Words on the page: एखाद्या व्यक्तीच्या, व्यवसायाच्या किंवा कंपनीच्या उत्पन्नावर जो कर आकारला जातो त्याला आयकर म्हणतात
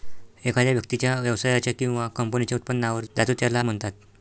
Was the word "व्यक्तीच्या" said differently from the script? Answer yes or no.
no